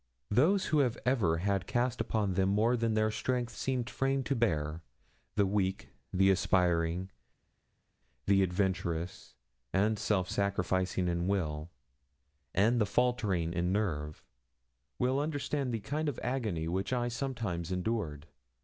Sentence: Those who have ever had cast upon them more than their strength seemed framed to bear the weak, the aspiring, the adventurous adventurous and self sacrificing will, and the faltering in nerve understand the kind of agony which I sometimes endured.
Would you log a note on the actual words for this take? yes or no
yes